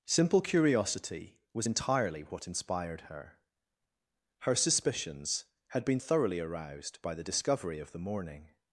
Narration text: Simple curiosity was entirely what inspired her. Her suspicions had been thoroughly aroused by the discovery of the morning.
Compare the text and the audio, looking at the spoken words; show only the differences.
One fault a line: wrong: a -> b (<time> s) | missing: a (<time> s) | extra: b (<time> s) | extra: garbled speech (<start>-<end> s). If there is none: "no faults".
no faults